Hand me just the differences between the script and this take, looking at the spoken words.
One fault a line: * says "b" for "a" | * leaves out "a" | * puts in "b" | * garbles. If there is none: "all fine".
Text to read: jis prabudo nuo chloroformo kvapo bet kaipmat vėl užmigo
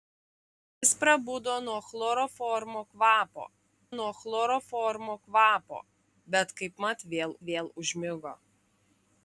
* puts in "nuo chloroformo kvapo"
* puts in "vėl"